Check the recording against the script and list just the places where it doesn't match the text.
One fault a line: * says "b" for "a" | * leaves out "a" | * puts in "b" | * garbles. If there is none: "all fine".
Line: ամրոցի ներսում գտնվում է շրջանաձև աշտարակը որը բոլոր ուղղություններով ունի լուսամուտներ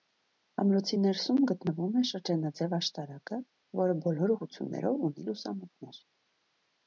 all fine